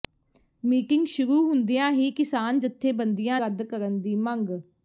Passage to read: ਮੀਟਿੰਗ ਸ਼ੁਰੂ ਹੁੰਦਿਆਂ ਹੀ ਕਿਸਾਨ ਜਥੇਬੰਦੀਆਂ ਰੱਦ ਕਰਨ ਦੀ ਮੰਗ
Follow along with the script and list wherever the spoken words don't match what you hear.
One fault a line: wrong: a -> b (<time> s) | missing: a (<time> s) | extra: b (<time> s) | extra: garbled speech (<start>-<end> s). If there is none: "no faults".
no faults